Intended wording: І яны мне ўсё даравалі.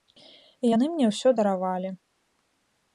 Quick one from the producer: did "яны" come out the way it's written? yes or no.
yes